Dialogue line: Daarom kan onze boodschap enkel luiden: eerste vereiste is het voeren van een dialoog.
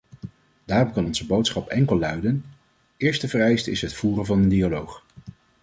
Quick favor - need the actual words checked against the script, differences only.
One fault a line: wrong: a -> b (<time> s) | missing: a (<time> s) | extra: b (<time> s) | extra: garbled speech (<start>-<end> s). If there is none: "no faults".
no faults